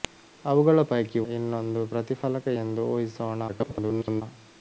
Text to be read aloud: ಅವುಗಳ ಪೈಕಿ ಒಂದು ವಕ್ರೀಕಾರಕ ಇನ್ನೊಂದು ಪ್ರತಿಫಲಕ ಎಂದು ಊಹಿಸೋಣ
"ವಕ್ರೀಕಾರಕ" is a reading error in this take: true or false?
true